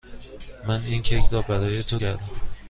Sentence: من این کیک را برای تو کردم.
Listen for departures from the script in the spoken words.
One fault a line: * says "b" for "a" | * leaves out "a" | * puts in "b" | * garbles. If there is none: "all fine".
all fine